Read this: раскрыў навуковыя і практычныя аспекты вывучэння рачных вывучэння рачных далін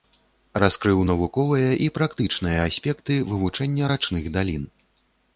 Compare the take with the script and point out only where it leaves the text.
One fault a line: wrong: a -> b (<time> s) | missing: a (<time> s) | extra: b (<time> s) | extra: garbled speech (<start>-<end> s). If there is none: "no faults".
missing: вывучэння рачных (4.3 s)